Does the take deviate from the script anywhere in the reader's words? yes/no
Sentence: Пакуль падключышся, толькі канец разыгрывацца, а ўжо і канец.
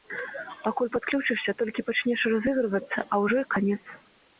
yes